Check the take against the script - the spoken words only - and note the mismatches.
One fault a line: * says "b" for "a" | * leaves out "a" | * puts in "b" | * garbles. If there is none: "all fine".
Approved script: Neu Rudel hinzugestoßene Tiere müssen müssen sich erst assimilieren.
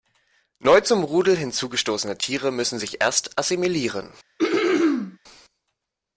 * puts in "zum"
* leaves out "müssen"